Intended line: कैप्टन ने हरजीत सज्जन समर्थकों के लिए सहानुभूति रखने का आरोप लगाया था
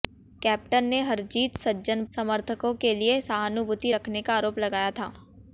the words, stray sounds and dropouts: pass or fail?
pass